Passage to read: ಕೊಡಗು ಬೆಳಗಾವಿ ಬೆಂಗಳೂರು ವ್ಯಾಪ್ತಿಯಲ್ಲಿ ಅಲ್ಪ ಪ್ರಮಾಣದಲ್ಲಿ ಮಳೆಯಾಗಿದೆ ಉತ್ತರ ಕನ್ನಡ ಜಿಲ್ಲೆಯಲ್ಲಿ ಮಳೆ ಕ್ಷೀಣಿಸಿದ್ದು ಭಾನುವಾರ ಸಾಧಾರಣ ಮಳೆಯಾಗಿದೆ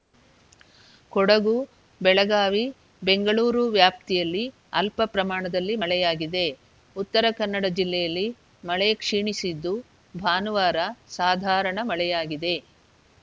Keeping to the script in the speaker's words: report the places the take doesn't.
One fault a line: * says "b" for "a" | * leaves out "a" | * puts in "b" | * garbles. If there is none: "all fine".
all fine